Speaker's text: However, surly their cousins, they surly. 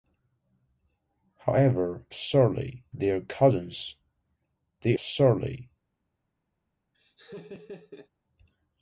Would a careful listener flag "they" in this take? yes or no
no